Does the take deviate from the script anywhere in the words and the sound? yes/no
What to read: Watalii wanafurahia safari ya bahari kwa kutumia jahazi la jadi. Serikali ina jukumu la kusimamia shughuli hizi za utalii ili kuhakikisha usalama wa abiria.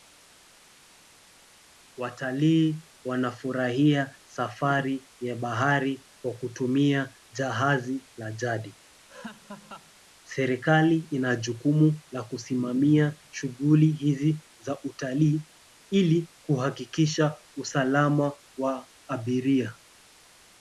yes